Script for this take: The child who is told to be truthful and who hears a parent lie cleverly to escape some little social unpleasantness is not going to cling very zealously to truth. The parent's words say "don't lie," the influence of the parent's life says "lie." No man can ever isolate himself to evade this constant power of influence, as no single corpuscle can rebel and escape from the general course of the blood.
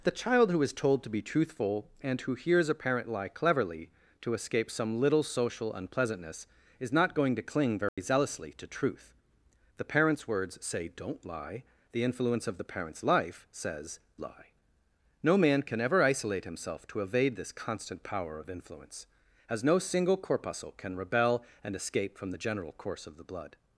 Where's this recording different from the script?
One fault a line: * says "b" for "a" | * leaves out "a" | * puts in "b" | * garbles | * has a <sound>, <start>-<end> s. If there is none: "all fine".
* has a dropout, 7.9-8.0 s